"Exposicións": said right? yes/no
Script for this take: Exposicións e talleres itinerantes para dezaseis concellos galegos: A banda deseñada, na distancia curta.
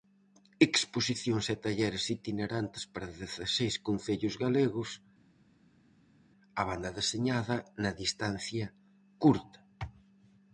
yes